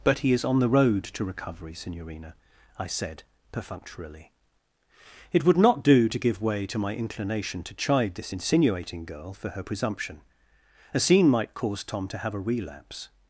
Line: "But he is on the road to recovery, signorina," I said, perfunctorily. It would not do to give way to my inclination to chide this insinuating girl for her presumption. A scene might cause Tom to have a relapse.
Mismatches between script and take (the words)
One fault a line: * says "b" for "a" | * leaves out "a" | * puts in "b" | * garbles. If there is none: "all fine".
all fine